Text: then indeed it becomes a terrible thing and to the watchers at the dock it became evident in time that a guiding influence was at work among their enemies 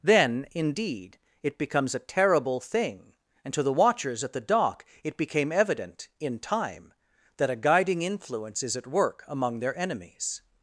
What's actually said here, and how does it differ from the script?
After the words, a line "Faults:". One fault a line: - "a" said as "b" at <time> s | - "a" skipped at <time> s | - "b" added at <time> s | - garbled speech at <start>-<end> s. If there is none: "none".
then indeed it becomes a terrible thing and to the watchers at the dock it became evident in time that a guiding influence is at work among their enemies
Faults:
- "was" said as "is" at 8.6 s